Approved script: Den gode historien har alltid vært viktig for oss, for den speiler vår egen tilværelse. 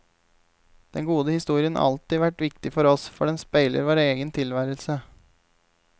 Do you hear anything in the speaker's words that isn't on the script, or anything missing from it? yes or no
no